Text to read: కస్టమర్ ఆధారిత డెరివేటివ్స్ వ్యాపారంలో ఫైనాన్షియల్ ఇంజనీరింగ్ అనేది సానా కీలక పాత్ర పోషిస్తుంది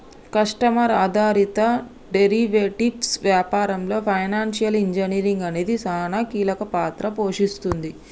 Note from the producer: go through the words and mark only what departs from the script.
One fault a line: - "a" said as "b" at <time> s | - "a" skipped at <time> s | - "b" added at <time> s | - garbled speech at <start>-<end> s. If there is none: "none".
none